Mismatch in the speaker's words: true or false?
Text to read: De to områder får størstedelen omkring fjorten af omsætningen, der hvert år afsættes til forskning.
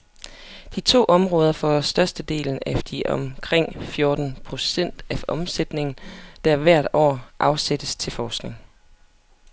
true